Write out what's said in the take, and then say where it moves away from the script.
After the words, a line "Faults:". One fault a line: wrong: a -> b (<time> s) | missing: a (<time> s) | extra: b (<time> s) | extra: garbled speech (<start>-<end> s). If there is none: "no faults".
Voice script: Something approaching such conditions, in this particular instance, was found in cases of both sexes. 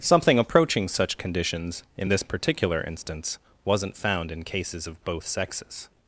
Something approaching such conditions, in this particular instance, wasn't found in cases of both sexes.
Faults:
wrong: was -> wasn't (3.6 s)